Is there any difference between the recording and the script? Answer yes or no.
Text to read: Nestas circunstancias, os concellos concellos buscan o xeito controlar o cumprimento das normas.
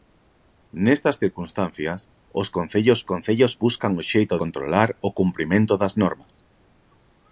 no